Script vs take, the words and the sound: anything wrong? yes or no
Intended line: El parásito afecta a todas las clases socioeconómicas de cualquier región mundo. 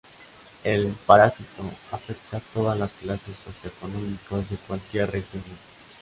no